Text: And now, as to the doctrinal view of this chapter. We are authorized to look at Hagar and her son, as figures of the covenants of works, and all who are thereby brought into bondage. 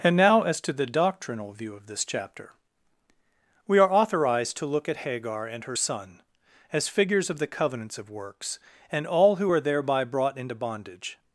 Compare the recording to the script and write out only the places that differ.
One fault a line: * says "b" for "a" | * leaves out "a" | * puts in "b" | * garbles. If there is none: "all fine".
all fine